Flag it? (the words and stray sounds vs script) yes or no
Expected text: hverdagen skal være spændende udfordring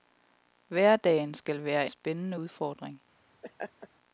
yes